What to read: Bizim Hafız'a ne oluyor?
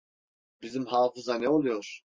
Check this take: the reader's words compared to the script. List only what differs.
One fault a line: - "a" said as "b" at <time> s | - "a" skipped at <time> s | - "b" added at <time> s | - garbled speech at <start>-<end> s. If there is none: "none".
none